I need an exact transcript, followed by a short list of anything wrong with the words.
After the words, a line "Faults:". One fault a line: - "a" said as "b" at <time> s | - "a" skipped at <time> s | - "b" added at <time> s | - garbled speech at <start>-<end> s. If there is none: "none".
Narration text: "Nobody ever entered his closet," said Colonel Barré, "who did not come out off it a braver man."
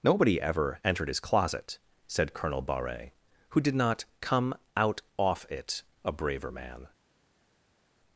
"Nobody ever entered his closet," said Colonel Barré, "who did not come out off it a braver man."
Faults:
none